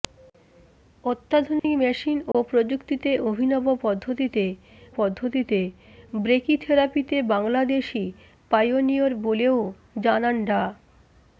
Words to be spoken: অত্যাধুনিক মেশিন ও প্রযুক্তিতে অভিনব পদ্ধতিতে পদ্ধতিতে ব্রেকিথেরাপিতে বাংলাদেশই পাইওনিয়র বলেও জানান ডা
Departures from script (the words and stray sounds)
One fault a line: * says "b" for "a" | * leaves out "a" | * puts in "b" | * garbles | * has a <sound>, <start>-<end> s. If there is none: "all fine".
* has a dropout, 1.6-1.6 s
* has a dropout, 2.3-2.3 s